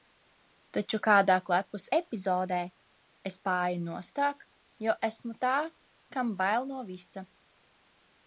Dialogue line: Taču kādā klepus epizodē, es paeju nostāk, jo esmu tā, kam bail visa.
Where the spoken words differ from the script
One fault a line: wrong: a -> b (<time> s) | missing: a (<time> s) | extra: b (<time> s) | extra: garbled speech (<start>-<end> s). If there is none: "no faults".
extra: no (6.7 s)